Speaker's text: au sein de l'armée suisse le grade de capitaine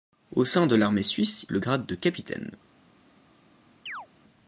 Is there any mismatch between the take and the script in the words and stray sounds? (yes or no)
yes